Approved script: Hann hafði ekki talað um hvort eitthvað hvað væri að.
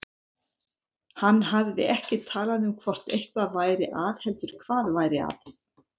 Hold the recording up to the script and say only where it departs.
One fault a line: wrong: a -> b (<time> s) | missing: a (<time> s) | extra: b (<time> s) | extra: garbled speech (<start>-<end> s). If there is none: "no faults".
extra: væri að heldur (3.6 s)